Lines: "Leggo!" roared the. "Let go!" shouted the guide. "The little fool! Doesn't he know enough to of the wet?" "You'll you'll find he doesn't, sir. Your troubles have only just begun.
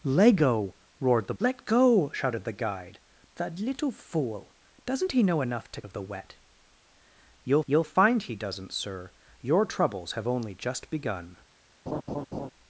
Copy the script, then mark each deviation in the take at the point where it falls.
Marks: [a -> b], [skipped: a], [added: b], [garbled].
"Leggo!" roared the. "Let go!" shouted the guide. "The little fool! Doesn't he know enough to of the wet?" "You'll you'll find he doesn't, sir. Your troubles have only just begun.